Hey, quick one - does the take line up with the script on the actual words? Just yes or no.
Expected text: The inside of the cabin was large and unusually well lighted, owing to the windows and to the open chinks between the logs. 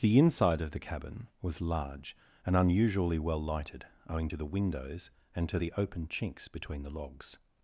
yes